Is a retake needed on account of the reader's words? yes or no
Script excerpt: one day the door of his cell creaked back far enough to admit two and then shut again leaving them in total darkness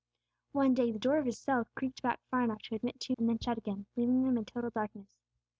no